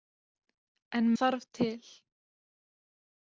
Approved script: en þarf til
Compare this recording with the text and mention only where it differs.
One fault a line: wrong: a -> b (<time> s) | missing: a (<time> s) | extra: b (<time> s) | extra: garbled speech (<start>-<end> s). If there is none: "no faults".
no faults